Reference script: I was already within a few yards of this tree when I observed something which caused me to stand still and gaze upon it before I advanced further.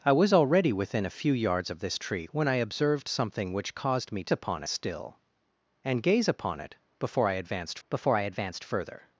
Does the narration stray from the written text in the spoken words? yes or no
yes